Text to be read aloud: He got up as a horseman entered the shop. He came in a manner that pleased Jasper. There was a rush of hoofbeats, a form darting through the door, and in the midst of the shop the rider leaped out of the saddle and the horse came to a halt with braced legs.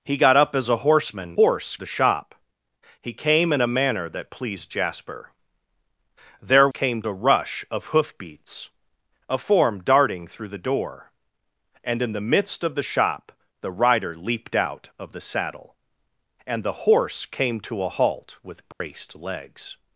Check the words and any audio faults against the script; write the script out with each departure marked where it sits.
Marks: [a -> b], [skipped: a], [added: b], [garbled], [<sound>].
He got up as a horseman [entered -> horse] the shop. He came in a manner that pleased Jasper. There [was -> came] a rush of hoofbeats, a form darting through the door, and in the midst of the shop the rider leaped out of the saddle and the horse came to a halt with braced [dropout] legs.